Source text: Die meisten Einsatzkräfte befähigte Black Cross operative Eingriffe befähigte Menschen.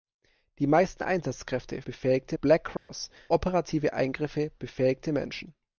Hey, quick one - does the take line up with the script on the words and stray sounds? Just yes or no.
no